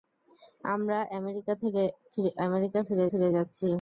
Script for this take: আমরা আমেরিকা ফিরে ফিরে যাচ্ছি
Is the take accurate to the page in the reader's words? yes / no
yes